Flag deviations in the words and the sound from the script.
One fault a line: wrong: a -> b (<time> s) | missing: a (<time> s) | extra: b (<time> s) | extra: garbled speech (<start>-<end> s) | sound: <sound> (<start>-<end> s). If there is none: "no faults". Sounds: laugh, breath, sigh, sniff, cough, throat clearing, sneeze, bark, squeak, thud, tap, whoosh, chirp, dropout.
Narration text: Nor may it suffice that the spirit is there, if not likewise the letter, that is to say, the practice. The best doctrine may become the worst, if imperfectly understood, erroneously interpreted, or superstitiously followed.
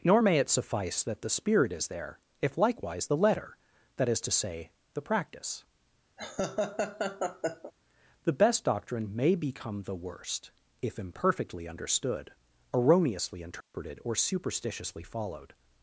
missing: not (2.6 s)
sound: laugh (6.2-7.7 s)
sound: dropout (13.6-13.7 s)